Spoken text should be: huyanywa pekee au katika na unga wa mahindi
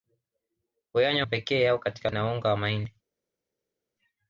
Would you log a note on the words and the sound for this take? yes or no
no